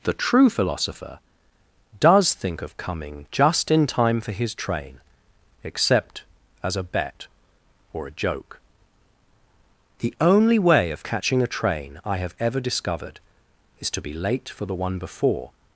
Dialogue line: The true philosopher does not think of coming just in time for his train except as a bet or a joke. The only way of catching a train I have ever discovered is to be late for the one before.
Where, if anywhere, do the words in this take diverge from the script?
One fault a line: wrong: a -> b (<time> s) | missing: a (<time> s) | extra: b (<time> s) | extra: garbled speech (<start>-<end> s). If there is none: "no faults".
missing: not (2.3 s)